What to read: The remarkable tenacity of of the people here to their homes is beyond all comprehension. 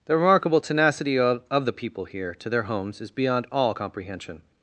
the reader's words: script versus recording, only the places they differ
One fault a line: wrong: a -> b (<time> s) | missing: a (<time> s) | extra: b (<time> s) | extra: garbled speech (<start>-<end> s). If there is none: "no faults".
no faults